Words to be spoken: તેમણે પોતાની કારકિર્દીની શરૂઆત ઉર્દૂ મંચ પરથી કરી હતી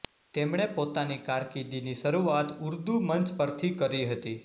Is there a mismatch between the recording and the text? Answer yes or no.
no